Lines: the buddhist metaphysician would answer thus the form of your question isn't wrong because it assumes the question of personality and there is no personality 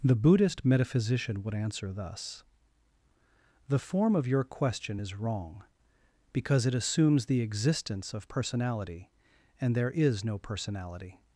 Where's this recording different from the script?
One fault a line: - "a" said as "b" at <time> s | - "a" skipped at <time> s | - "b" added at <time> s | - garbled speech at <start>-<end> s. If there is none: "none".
- "isn't" said as "is" at 5.0 s
- "question" said as "existence" at 7.4 s